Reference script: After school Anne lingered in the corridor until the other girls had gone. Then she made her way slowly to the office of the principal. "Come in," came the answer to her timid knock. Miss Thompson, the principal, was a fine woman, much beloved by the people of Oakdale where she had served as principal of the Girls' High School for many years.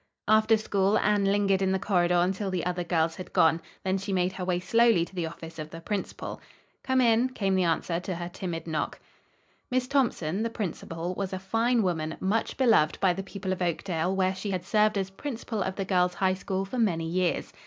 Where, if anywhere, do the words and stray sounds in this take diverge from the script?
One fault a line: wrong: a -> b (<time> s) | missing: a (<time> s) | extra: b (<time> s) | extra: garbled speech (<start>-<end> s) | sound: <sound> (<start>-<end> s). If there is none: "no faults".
no faults